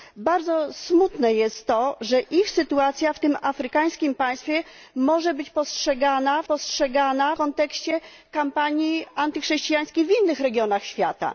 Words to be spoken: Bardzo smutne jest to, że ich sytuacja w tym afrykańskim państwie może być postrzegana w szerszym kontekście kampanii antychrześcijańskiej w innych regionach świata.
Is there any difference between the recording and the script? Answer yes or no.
yes